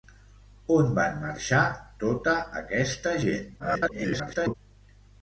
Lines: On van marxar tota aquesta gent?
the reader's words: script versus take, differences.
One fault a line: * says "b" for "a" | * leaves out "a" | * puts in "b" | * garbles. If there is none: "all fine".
* garbles